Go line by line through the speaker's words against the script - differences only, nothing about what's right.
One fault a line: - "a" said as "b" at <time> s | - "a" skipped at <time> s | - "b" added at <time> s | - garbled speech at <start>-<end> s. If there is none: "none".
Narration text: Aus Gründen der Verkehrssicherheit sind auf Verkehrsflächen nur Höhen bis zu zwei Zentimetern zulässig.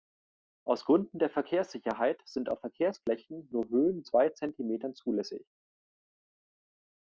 - "bis zu" skipped at 4.0 s